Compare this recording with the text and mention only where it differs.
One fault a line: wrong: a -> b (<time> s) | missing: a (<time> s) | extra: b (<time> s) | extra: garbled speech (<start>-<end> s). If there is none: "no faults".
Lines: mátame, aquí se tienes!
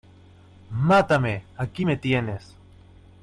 wrong: se -> me (1.8 s)